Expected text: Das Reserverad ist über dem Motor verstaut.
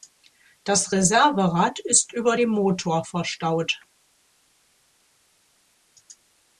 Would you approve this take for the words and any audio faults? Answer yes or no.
yes